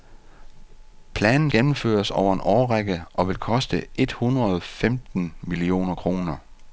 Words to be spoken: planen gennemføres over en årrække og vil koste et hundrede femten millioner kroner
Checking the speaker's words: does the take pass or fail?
pass